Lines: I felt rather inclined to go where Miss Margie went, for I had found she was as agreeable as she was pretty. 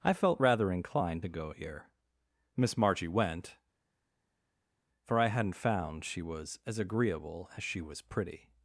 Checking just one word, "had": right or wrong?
wrong